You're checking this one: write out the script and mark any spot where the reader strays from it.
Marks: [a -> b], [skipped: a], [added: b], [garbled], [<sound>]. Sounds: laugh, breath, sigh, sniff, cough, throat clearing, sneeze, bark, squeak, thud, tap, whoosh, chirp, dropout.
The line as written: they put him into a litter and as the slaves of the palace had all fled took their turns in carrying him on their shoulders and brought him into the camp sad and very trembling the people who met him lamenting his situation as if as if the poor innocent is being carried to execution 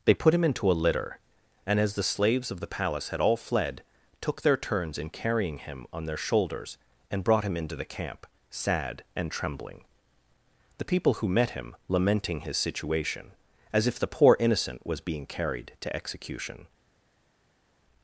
they put him into a litter and as the slaves of the palace had all fled took their turns in carrying him on their shoulders and brought him into the camp sad and [skipped: very] trembling the people who met him lamenting his situation as if [skipped: as if] the poor innocent [is -> was] being carried to execution